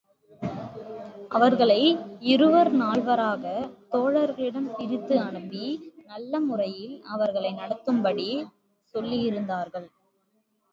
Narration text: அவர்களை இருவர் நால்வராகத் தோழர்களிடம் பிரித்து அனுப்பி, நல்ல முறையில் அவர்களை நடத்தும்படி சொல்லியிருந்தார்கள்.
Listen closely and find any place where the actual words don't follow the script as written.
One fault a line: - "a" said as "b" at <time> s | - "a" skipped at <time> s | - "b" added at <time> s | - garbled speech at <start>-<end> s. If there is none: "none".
none